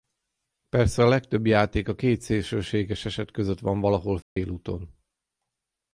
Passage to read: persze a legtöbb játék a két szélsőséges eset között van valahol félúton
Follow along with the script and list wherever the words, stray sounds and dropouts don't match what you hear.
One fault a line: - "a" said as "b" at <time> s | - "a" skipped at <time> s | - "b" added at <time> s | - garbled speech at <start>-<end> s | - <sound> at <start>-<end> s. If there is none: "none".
- dropout at 4.2-4.4 s